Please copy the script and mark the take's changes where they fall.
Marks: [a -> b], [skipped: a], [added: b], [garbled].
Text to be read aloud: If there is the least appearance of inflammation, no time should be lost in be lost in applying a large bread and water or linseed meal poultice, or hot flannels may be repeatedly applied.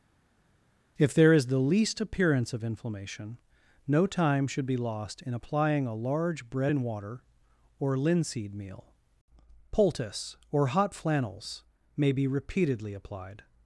If there is the least appearance of inflammation, no time should be lost in [skipped: be lost in] applying a large bread and water or linseed meal poultice, or hot flannels may be repeatedly applied.